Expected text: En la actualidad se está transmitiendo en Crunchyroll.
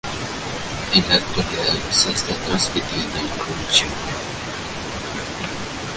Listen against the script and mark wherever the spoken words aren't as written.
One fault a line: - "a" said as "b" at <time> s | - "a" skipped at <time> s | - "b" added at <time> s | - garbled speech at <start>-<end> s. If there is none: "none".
none